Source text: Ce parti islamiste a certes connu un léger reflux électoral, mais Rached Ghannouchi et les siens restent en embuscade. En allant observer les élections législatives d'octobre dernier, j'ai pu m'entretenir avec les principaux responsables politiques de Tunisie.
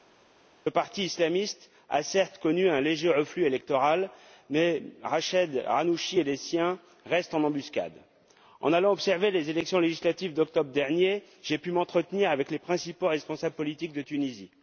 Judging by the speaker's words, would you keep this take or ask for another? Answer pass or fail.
pass